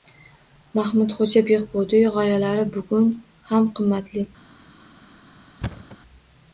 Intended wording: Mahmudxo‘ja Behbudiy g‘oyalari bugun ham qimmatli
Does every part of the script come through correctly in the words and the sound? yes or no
no